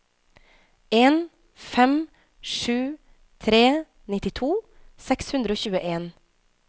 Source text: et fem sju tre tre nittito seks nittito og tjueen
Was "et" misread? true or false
true